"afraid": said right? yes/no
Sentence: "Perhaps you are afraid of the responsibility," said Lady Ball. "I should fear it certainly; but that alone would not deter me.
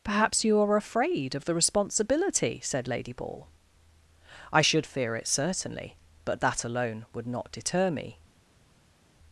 yes